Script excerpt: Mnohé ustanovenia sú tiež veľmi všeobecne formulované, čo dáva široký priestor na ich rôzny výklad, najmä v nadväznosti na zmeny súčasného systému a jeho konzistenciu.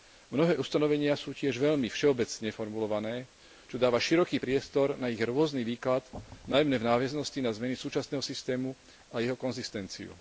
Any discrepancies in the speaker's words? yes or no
no